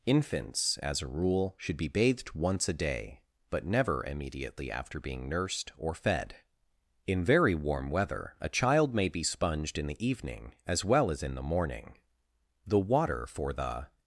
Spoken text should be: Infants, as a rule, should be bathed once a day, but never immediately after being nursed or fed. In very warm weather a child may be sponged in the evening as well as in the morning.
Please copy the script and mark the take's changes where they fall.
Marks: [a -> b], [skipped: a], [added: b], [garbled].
Infants, as a rule, should be bathed once a day, but never immediately after being nursed or fed. In very warm weather a child may be sponged in the evening as well as in the morning. [added: The water for the]